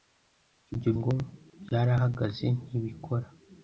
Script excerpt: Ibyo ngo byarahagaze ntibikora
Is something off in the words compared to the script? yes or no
no